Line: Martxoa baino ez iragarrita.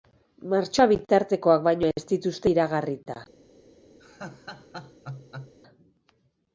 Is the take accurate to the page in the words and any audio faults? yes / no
no